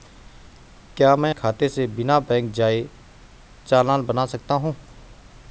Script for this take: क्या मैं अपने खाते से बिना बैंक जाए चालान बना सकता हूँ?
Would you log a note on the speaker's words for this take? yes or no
yes